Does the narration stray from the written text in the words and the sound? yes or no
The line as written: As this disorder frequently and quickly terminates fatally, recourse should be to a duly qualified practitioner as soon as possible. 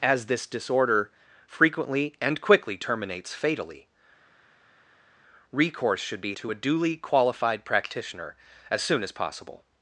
no